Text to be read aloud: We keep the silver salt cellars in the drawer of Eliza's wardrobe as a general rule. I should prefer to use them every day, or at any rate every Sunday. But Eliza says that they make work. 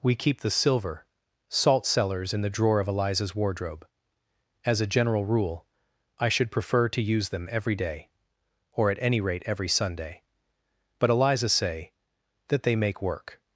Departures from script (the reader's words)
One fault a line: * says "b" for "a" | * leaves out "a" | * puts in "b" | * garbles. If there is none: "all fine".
* says "say" for "says"